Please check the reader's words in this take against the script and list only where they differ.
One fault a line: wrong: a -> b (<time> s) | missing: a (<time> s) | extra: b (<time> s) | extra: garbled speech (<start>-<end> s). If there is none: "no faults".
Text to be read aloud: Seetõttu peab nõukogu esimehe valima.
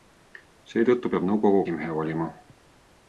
no faults